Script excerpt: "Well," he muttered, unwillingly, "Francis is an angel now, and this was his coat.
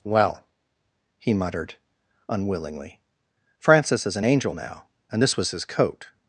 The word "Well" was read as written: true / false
true